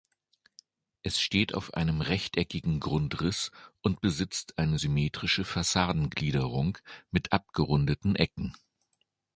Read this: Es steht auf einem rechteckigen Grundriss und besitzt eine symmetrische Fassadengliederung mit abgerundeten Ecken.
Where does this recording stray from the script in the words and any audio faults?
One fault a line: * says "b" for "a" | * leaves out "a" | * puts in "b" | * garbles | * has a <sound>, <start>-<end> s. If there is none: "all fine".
all fine